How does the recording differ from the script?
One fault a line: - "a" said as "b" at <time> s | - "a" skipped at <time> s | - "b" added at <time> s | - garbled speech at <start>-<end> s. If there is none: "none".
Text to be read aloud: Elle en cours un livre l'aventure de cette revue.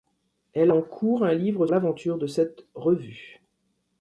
none